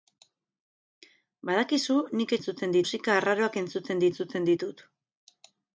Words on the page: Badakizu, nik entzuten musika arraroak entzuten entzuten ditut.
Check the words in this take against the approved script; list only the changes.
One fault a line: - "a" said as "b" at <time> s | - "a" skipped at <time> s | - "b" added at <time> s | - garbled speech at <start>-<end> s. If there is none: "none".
none